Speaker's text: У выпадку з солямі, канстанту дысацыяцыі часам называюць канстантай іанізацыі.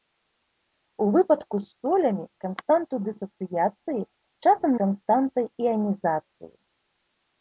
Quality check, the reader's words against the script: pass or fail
fail